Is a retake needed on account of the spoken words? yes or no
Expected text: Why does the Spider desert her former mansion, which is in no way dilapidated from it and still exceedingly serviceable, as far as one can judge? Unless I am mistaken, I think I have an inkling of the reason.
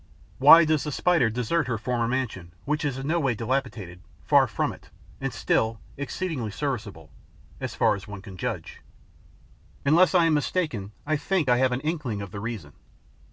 yes